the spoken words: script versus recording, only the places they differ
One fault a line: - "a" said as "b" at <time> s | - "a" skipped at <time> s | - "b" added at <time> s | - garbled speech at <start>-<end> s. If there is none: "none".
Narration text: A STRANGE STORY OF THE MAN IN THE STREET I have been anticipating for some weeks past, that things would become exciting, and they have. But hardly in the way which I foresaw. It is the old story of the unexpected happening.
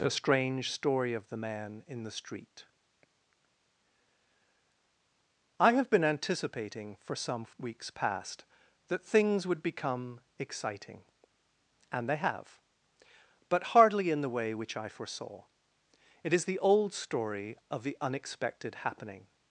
none